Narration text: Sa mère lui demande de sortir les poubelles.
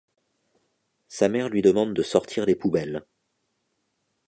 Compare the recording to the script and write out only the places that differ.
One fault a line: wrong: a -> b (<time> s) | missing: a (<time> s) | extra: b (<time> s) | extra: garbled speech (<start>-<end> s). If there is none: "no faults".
no faults